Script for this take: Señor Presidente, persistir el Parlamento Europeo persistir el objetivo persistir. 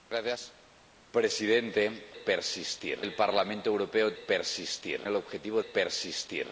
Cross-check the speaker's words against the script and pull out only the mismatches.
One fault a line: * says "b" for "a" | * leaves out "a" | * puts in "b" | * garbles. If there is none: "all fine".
all fine